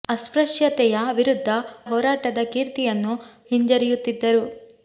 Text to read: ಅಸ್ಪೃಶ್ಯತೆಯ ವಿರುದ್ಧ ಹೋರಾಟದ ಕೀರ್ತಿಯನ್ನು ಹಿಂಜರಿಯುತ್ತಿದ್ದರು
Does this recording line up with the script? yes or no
yes